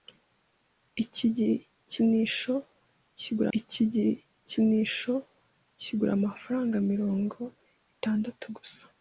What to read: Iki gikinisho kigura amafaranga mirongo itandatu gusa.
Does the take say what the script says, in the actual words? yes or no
no